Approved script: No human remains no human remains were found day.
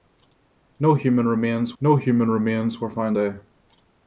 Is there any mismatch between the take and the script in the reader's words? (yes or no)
no